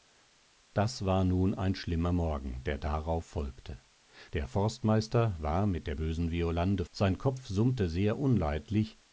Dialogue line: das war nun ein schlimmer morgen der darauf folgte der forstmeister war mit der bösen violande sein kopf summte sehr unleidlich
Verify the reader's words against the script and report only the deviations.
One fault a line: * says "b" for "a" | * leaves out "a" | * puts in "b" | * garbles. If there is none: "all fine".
all fine